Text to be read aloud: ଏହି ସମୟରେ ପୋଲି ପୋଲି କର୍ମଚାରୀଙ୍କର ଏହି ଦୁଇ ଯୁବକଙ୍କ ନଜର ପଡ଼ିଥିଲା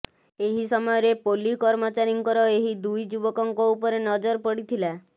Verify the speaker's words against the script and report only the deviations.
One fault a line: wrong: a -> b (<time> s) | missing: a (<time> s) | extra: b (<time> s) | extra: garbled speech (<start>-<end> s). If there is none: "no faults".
missing: ପୋଲି (1.5 s)
extra: ଉପରେ (3.8 s)